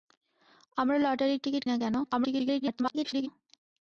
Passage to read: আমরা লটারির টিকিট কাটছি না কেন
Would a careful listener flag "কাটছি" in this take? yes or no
yes